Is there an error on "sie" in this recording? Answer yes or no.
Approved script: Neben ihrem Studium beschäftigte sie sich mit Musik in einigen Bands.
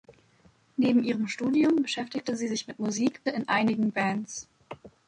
no